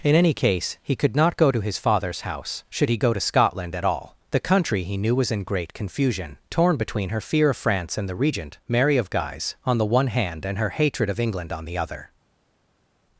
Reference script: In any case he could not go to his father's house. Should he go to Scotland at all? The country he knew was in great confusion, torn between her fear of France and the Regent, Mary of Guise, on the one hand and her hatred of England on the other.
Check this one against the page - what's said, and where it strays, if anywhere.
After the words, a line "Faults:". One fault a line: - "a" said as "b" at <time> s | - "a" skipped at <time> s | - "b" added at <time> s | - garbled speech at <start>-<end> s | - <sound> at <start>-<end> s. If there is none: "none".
In any case he could not go to his father's house. Should he go to Scotland at all? The country he knew was in great confusion, torn between her fear of France and the Regent, Mary of Guise, on the one hand and her hatred of England on the other.
Faults:
none